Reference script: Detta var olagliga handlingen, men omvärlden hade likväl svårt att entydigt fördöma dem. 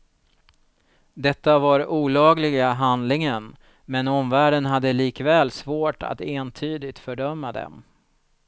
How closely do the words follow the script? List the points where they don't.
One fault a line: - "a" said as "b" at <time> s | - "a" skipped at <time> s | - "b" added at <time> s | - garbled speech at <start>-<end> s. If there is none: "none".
none